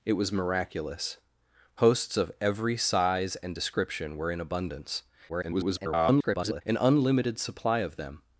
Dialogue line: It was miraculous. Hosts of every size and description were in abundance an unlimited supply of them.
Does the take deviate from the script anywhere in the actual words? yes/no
yes